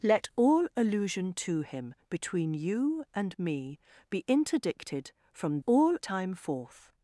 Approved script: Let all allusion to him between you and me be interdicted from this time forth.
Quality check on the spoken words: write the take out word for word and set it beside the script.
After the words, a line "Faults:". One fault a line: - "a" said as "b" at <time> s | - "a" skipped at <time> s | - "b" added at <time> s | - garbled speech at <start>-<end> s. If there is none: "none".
Let all allusion to him between you and me be interdicted from all time forth.
Faults:
- "this" said as "all" at 5.6 s